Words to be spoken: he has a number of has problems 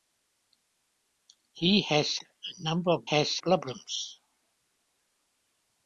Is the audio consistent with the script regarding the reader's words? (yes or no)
yes